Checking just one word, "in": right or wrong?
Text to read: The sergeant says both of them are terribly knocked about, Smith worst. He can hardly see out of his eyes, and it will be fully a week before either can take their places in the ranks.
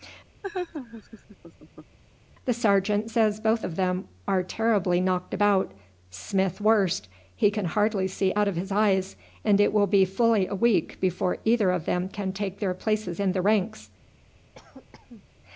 right